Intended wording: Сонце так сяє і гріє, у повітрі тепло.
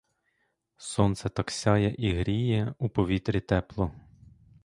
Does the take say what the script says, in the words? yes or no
yes